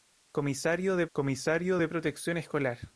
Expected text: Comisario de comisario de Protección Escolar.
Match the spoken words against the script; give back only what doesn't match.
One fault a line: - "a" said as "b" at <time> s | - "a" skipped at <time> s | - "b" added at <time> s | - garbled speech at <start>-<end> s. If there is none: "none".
none